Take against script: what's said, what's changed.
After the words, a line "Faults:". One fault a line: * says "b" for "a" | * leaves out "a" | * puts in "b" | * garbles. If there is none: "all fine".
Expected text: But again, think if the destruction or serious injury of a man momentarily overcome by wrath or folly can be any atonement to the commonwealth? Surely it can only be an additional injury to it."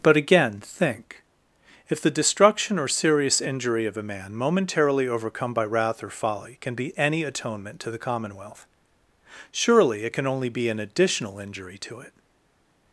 But again, think if the destruction or serious injury of a man momentarily overcome by wrath or folly can be any atonement to the commonwealth? Surely it can only be an additional injury to it."
Faults:
all fine